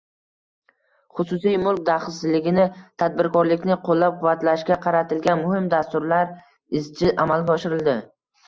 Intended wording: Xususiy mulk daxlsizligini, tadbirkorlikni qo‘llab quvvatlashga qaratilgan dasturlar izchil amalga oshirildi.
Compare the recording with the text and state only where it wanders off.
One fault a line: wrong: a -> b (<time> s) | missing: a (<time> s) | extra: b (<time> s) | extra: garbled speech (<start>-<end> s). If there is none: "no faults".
extra: muhim (5.4 s)